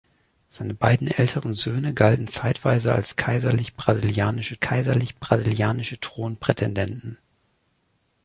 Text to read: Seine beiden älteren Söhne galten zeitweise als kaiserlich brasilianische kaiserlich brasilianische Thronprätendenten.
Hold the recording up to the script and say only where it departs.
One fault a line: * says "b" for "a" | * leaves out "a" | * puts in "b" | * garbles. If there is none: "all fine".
all fine